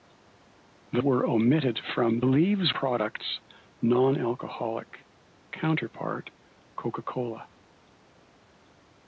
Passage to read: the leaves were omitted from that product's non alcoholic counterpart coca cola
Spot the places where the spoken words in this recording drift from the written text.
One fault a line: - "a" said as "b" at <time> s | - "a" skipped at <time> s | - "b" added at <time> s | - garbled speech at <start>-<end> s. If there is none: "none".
- "leaves" skipped at 1.0 s
- "that" said as "leaves" at 2.2 s